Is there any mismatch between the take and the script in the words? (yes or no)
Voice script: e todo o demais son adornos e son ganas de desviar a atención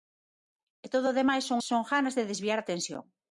yes